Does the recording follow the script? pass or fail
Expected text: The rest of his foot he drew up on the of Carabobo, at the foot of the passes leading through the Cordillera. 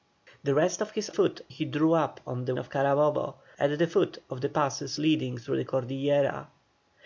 pass